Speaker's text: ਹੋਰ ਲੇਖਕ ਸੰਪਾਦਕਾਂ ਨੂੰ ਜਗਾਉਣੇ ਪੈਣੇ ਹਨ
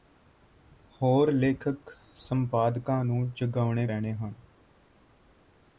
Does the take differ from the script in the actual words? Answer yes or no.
no